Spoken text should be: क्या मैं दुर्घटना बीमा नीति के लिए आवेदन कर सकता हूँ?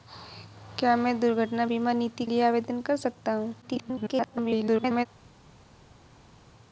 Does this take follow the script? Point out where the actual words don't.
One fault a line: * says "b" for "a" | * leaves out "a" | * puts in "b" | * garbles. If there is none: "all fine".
* leaves out "के"
* garbles